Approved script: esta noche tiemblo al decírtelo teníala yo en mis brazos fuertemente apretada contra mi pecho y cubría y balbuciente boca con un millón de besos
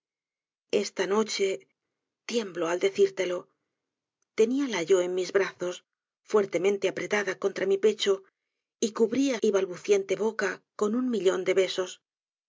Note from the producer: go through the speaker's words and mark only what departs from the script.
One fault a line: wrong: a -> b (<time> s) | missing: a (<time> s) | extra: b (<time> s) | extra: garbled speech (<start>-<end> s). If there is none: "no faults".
no faults